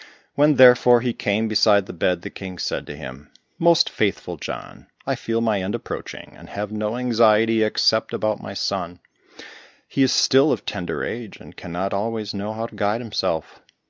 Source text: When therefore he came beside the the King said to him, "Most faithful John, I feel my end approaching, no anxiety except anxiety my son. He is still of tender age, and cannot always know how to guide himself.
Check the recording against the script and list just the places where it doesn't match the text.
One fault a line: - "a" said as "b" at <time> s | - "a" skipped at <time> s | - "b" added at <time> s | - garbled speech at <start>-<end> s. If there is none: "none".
- "bed" added at 1.9 s
- "and have" added at 6.4 s
- "anxiety" said as "about" at 8.1 s